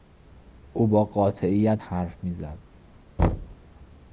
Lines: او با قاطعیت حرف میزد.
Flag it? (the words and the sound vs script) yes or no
yes